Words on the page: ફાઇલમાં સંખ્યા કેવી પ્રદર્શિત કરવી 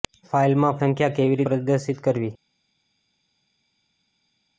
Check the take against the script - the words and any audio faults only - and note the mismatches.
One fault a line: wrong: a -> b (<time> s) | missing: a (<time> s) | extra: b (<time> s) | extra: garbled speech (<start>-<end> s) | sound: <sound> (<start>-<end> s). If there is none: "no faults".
no faults